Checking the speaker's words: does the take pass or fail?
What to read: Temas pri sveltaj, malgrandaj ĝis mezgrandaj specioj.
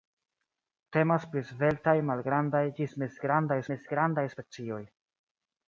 fail